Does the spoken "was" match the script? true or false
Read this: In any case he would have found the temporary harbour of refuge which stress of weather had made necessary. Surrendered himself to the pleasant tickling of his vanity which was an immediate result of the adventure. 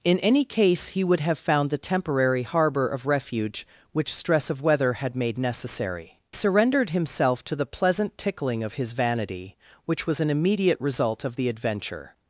true